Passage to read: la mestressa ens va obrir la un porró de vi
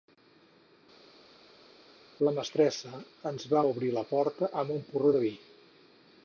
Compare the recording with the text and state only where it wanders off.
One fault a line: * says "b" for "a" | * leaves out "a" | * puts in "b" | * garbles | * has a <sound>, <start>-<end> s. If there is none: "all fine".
* puts in "porta amb"